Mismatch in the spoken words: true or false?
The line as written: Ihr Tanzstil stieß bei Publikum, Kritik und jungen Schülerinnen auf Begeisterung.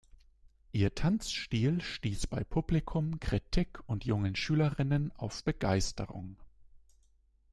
false